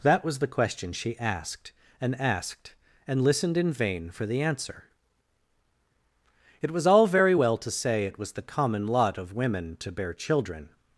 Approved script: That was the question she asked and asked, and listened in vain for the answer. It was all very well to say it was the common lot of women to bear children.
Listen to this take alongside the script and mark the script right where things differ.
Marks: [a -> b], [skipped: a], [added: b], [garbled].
That was the question she asked and asked, and listened in vain for the answer. It was all very well to say it was the common lot of women to bear children.